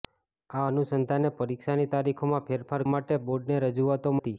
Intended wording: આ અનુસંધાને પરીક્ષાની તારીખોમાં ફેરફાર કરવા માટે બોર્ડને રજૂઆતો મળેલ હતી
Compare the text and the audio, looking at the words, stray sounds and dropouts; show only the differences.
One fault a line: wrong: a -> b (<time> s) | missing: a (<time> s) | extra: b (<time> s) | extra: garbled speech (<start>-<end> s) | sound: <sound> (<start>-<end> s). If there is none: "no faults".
missing: કરવા (2.9 s)
missing: મળેલ (4.2 s)